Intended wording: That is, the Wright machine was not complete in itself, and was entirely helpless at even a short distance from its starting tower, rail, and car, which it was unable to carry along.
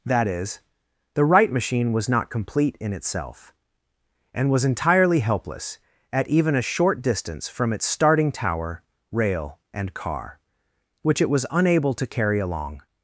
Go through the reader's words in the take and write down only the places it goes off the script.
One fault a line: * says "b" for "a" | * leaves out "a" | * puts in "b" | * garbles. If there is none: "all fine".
all fine